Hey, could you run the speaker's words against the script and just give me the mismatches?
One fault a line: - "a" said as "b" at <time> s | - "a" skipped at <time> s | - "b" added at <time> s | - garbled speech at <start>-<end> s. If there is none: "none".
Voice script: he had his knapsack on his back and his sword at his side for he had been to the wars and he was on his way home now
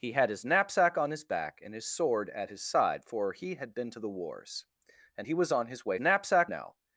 - "home" said as "knapsack" at 6.0 s